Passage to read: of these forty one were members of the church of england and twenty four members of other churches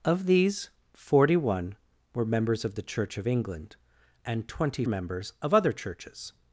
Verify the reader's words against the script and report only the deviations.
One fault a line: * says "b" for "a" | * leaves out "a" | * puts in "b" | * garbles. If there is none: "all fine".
* leaves out "four"